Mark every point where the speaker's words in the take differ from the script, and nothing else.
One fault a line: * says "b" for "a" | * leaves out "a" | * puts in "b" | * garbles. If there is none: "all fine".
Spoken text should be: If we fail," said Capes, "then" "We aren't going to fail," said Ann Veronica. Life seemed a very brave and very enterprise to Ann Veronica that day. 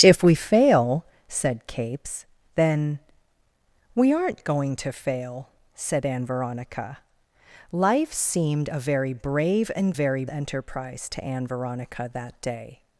all fine